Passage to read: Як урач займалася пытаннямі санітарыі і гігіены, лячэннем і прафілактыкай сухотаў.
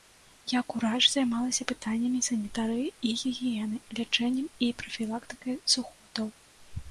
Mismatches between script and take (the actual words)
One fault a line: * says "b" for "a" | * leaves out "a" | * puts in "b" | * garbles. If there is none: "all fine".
all fine